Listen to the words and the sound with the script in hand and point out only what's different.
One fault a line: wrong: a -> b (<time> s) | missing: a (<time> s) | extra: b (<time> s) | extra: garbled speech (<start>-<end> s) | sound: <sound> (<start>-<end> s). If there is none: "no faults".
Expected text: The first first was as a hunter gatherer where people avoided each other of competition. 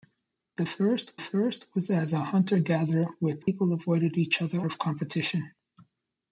sound: dropout (3.4-3.5 s)